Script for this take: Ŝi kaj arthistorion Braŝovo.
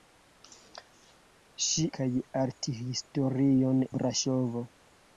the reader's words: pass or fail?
pass